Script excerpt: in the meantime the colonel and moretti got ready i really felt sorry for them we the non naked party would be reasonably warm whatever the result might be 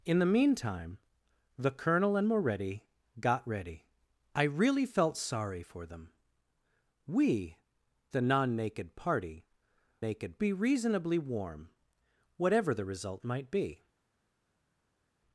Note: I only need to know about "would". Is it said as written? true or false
false